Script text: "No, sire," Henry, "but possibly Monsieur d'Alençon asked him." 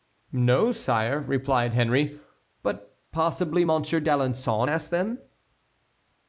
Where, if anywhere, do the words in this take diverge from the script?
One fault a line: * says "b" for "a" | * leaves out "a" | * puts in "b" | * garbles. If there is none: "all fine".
* puts in "replied"
* says "them" for "him"